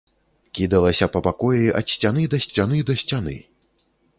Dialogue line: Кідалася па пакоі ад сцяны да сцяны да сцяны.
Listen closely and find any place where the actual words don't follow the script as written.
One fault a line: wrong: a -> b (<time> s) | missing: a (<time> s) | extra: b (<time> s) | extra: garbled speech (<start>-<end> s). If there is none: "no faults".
no faults